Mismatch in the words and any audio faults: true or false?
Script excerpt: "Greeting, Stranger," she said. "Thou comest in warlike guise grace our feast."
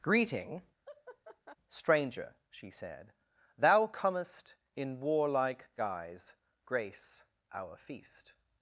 true